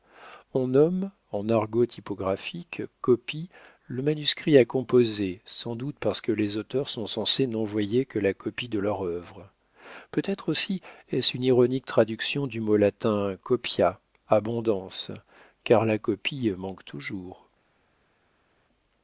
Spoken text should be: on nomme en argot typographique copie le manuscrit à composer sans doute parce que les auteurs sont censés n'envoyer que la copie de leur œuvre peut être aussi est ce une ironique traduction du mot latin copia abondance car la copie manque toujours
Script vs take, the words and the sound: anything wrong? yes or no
no